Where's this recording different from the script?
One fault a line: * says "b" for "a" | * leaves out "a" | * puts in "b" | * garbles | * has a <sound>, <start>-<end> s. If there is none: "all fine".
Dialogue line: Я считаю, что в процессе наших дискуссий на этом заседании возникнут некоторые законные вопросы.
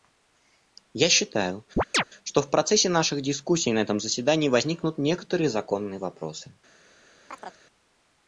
* has a chirp, 1.8-2.0 s
* has a chirp, 7.3-7.6 s